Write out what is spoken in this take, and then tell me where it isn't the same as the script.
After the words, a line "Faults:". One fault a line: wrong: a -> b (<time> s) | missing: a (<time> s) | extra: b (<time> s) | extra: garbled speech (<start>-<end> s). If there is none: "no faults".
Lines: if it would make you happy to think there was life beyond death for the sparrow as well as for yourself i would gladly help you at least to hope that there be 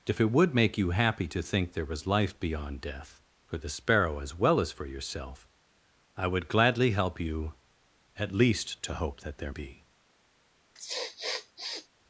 if it would make you happy to think there was life beyond death for the sparrow as well as for yourself i would gladly help you at least to hope that there be
Faults:
no faults